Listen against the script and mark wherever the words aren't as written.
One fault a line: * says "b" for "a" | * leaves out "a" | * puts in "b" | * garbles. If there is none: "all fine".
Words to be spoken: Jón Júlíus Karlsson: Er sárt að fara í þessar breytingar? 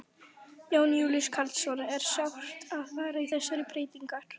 all fine